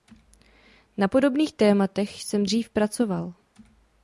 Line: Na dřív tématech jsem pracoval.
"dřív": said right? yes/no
no